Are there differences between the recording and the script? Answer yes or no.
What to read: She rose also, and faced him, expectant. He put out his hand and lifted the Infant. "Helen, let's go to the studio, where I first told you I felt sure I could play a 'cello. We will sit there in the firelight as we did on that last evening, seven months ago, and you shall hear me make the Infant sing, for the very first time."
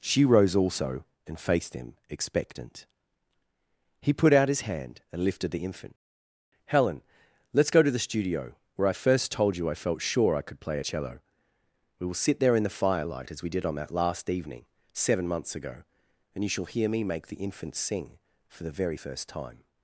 no